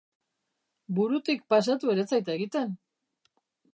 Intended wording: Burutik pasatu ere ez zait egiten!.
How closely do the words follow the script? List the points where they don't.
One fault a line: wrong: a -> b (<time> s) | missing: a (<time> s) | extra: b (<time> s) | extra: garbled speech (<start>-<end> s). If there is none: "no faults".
no faults